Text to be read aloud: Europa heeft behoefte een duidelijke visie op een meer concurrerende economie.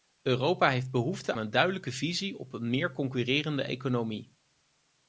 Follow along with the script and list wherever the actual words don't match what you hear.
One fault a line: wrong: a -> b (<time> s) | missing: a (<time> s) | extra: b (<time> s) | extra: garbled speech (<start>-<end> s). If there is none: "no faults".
no faults